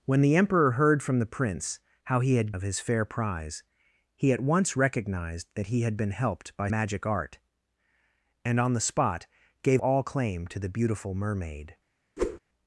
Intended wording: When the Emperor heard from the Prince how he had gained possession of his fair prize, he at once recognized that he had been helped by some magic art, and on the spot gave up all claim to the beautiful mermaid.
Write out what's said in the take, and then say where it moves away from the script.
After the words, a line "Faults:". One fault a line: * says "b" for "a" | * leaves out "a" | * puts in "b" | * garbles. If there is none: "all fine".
When the Emperor heard from the Prince how he had of his fair prize, he at once recognized that he had been helped by magic art, and on the spot gave all claim to the beautiful mermaid.
Faults:
* leaves out "gained possession"
* leaves out "some"
* leaves out "up"